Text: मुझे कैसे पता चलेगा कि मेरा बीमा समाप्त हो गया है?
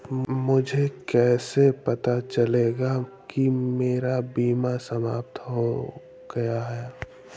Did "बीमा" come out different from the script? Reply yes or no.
no